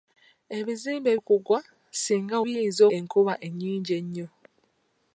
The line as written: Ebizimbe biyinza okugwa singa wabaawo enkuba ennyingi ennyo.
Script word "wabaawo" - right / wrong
wrong